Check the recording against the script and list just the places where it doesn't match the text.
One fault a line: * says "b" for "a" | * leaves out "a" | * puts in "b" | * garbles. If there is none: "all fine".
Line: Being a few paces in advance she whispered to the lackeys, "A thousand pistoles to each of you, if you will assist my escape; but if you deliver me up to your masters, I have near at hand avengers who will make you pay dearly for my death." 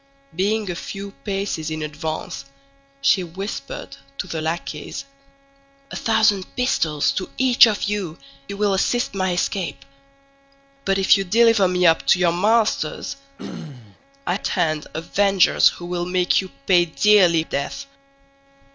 * leaves out "if"
* leaves out "have near"
* leaves out "for my"